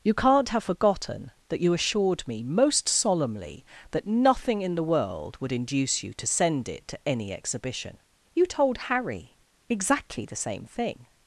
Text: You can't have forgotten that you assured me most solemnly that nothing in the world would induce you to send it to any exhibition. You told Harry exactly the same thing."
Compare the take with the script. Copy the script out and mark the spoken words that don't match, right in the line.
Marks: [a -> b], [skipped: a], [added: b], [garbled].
You can't have forgotten that you assured me most solemnly that nothing in the world would induce you to send it to any exhibition. You told Harry exactly the same thing."